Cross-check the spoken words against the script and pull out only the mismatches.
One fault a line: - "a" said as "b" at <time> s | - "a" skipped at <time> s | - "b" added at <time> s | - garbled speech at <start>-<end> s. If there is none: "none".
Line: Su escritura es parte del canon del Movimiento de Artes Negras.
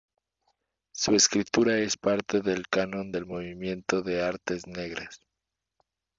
none